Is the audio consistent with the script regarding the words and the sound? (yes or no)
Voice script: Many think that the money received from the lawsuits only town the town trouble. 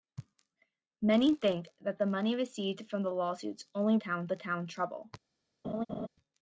no